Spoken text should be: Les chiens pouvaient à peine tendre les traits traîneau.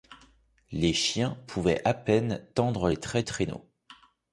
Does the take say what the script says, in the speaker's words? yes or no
yes